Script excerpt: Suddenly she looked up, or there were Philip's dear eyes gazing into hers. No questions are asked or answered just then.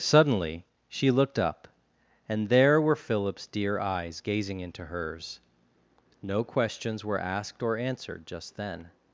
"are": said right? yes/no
no